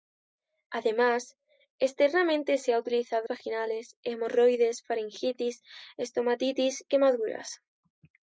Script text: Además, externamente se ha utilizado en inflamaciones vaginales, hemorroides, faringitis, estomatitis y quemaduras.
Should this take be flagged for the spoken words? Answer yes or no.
yes